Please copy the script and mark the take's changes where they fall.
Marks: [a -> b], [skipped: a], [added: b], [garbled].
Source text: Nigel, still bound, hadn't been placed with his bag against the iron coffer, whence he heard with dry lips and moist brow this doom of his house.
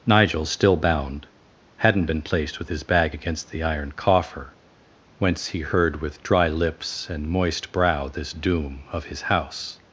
Nigel, still bound, hadn't been placed with his bag against the iron coffer, whence he heard with dry lips and moist brow this doom of his house.